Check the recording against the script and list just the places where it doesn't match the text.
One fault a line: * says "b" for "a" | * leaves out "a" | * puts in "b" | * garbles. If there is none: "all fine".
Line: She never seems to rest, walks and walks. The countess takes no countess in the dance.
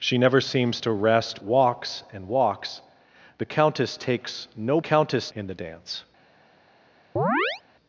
all fine